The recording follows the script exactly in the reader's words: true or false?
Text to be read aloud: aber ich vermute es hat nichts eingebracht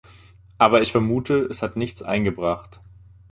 true